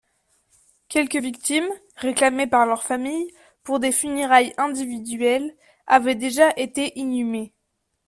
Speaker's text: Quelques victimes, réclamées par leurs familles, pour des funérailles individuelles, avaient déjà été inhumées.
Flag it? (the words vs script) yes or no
no